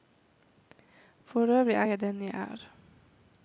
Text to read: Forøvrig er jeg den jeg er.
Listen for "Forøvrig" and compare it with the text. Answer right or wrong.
right